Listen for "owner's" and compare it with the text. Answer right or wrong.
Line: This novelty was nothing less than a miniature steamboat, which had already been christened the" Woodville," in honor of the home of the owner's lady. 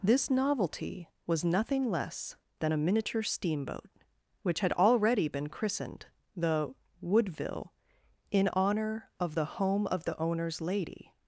right